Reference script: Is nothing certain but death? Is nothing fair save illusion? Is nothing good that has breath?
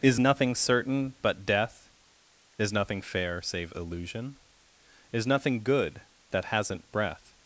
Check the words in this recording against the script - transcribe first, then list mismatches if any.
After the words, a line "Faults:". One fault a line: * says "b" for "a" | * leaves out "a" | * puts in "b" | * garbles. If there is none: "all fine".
Is nothing certain but death? Is nothing fair save illusion? Is nothing good that hasn't breath?
Faults:
* says "hasn't" for "has"